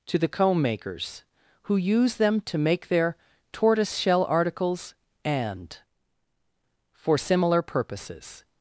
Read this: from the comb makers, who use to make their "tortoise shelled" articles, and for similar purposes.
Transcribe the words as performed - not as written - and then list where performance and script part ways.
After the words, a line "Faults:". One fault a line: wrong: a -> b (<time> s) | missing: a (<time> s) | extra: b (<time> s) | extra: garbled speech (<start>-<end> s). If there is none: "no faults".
to the comb makers, who use them to make their "tortoise shell" articles, and for similar purposes.
Faults:
wrong: from -> to (0.1 s)
extra: them (2.1 s)
wrong: shelled -> shell (4.0 s)